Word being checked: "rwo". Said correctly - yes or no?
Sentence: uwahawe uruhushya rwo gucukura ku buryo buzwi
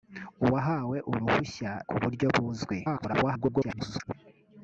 no